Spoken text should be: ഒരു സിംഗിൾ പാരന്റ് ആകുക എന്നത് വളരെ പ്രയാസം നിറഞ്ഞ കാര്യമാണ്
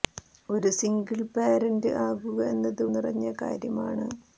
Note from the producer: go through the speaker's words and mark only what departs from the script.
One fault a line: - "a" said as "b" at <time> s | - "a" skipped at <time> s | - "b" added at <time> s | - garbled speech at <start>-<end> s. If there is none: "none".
- "വളരെ പ്രയാസം" skipped at 2.8 s